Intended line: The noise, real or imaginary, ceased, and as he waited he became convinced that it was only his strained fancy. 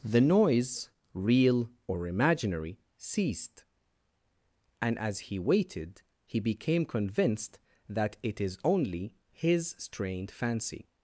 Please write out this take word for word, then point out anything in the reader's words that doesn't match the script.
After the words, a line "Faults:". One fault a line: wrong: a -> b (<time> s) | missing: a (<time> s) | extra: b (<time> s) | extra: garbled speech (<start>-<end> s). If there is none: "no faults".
The noise, real or imaginary, ceased, and as he waited he became convinced that it is only his strained fancy.
Faults:
wrong: was -> is (8.4 s)